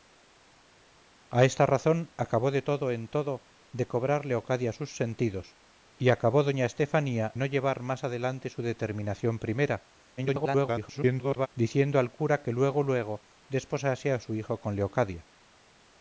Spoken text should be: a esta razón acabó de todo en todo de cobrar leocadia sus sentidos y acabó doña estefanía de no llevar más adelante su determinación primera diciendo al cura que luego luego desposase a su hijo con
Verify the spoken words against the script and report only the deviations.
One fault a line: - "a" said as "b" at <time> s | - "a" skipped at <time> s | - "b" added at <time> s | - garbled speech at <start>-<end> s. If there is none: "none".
- "de" skipped at 7.3 s
- garbled speech at 10.2-11.5 s